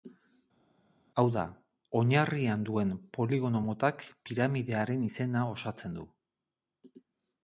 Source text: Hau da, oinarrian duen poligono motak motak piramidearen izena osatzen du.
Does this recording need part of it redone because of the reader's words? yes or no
yes